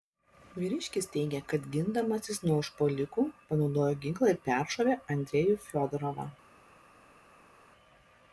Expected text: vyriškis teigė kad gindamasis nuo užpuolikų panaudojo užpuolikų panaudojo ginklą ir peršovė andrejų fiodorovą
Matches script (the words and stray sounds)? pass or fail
fail